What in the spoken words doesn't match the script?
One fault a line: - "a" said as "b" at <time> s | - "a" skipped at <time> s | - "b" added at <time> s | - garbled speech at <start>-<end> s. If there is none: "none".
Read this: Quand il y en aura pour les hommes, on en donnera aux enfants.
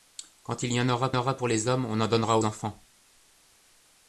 - "aura" added at 1.1 s
- "aux" skipped at 2.4 s